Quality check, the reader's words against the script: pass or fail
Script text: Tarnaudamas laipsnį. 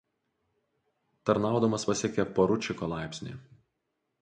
fail